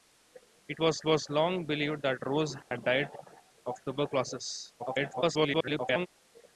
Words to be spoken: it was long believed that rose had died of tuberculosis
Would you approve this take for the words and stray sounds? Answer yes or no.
no